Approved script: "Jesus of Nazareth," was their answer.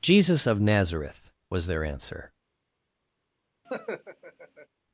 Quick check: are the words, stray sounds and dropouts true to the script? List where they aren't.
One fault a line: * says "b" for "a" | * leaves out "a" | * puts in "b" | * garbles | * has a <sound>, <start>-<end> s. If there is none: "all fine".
* has a laugh, 3.6-4.7 s